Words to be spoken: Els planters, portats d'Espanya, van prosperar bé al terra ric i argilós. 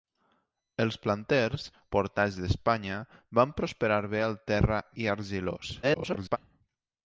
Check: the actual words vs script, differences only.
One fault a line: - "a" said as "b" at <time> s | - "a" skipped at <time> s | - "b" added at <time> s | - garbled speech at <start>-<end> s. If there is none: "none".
- "ric" skipped at 4.8 s
- garbled speech at 5.8-6.4 s